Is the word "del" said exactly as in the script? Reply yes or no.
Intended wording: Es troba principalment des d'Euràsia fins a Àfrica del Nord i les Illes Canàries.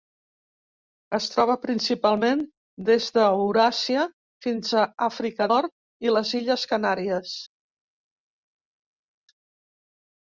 no